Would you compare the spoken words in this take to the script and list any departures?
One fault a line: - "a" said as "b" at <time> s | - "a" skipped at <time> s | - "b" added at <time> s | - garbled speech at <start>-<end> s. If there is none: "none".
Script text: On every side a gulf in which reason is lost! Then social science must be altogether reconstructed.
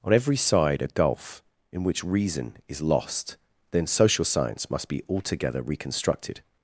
none